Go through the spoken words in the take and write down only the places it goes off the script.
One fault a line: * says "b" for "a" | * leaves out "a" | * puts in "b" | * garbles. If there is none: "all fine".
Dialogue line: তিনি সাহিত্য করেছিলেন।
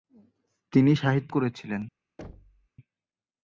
all fine